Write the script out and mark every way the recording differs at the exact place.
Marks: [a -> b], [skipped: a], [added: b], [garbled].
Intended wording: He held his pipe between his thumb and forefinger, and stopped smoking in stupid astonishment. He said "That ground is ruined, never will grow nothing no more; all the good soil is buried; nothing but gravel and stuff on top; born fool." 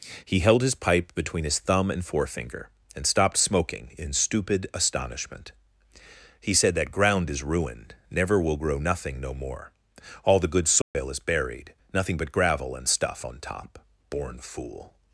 He held his pipe between his thumb and forefinger, and stopped smoking in stupid astonishment. He said "That ground is ruined, never will grow nothing no more; all the good soil is buried; nothing but gravel and stuff on top; born fool."